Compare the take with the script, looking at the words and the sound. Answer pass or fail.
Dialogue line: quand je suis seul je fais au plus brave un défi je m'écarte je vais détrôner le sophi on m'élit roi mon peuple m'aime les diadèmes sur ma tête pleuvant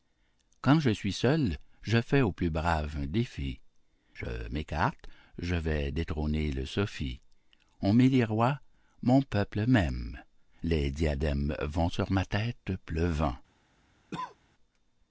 fail